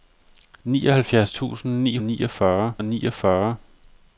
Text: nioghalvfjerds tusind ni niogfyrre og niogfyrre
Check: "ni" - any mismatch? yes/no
no